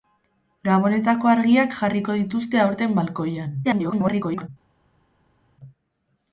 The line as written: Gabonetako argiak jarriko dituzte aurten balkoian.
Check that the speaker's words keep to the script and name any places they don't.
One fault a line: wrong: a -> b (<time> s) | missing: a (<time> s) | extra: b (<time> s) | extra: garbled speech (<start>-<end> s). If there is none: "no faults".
extra: garbled speech (3.6-4.5 s)